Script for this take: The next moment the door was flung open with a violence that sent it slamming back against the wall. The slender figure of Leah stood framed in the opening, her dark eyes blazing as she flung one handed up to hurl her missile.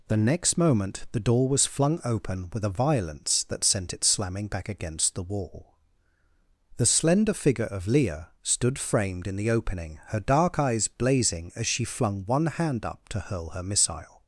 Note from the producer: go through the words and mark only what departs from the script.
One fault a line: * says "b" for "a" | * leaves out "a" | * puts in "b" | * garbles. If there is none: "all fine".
* says "hand" for "handed"